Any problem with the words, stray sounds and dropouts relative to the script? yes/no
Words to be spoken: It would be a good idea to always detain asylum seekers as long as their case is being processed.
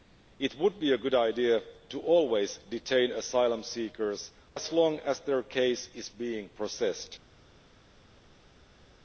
no